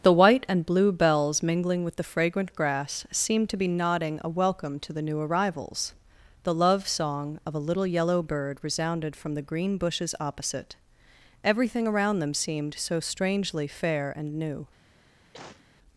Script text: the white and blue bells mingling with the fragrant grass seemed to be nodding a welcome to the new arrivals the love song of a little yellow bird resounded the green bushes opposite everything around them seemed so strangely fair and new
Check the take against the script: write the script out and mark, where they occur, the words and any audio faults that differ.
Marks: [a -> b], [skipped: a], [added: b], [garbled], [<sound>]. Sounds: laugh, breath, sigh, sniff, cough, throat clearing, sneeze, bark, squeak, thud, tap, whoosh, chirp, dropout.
the white and blue bells mingling with the fragrant grass seemed to be nodding a welcome to the new arrivals the love song of a little yellow bird resounded [added: from] the green bushes opposite everything around them seemed so strangely fair and new [cough]